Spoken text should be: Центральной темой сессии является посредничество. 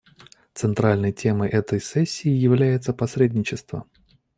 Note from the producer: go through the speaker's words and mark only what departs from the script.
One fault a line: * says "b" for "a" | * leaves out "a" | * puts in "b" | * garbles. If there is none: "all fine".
* puts in "этой"